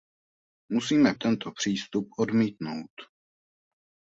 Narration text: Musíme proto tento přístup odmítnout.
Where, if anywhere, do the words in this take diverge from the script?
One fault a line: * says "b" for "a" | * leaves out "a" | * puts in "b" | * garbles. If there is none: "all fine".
* leaves out "proto"